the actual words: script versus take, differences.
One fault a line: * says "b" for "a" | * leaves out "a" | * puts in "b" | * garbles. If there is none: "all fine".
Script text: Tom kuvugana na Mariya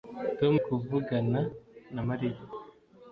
all fine